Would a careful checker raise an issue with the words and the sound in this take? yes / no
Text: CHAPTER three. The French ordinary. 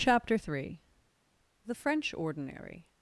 no